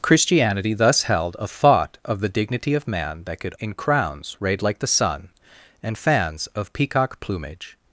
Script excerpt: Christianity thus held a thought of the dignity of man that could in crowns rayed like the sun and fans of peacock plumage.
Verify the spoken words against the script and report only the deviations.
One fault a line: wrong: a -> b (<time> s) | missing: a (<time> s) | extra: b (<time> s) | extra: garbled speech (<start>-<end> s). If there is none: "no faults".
no faults